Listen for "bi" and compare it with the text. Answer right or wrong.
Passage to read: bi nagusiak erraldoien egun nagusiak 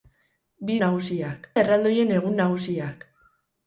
right